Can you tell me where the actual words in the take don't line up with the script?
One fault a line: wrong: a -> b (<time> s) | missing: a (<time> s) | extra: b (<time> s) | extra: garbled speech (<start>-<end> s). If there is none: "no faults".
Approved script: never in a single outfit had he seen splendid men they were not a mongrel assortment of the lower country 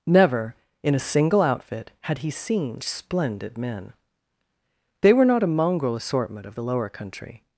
no faults